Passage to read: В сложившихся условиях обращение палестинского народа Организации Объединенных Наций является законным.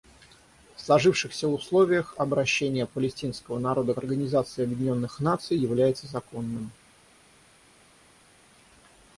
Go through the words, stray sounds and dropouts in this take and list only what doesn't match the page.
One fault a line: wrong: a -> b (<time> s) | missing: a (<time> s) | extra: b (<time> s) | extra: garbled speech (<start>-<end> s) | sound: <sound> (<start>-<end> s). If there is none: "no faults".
no faults